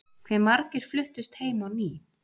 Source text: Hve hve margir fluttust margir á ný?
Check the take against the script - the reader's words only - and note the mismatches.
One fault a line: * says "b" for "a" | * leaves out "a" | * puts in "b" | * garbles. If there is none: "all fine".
* leaves out "hve"
* says "heim" for "margir"